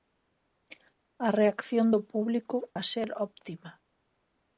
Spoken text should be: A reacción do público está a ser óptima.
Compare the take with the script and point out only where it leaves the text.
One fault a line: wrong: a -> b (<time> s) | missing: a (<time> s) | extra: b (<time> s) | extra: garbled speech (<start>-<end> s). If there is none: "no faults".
missing: está (2.6 s)